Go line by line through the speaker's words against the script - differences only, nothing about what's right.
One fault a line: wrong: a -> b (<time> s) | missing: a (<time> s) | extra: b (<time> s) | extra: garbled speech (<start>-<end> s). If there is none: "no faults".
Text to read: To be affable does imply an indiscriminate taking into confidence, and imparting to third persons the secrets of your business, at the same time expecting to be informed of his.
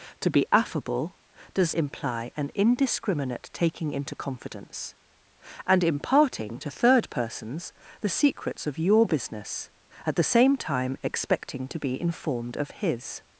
no faults